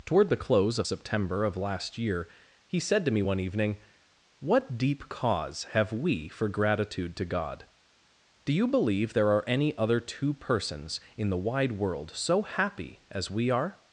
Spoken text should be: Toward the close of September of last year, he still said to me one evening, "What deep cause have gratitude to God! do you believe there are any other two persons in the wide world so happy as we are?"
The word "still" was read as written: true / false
false